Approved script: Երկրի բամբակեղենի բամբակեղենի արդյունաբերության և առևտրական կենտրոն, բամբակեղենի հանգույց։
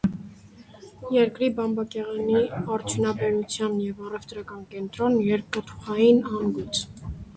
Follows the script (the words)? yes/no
no